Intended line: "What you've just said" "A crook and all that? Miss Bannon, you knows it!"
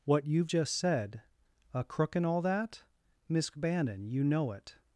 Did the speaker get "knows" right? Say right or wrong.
wrong